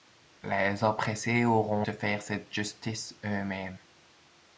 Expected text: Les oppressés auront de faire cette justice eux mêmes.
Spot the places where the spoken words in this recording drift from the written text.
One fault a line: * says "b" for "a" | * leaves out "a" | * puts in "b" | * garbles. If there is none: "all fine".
all fine